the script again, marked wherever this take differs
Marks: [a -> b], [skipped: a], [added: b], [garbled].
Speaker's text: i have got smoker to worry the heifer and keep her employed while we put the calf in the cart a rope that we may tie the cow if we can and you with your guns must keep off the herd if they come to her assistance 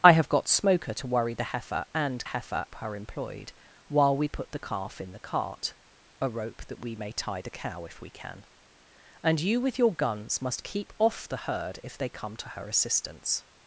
i have got smoker to worry the heifer and [keep -> heifer] her employed while we put the calf in the cart a rope that we may tie the cow if we can and you with your guns must keep off the herd if they come to her assistance